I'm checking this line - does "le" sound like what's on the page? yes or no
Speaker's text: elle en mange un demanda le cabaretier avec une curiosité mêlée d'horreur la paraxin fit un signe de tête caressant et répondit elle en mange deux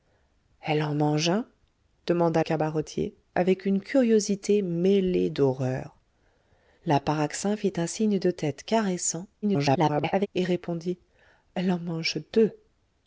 no